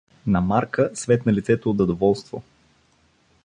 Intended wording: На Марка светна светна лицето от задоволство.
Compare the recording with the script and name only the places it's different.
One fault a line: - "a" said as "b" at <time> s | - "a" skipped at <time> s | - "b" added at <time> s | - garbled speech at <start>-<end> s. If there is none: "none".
- "светна" skipped at 1.3 s